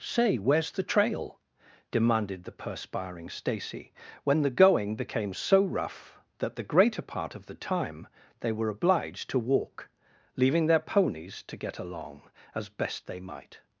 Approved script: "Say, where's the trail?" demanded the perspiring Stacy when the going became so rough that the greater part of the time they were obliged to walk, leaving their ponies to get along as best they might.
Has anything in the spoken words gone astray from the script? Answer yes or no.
no